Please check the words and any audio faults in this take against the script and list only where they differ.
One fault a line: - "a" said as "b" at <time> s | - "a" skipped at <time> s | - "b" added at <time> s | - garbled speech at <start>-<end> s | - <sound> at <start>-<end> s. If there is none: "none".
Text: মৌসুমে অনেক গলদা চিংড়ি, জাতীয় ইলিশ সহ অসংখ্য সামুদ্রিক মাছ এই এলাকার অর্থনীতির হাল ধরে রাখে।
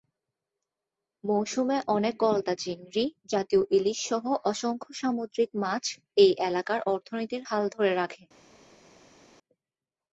none